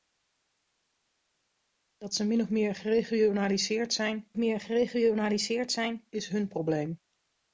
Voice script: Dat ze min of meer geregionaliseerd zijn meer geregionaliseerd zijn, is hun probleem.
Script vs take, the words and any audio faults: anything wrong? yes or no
no